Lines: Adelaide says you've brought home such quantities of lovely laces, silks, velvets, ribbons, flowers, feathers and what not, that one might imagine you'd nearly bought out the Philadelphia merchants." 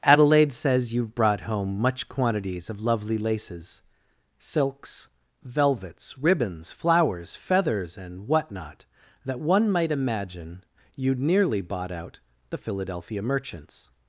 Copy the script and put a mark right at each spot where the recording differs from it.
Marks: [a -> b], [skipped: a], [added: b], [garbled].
Adelaide says you've brought home [such -> much] quantities of lovely laces, silks, velvets, ribbons, flowers, feathers and what not, that one might imagine you'd nearly bought out the Philadelphia merchants."